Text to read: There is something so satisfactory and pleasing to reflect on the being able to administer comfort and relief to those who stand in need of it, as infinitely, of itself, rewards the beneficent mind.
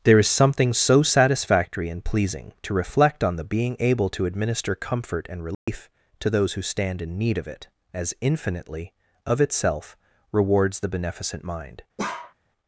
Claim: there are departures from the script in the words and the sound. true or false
true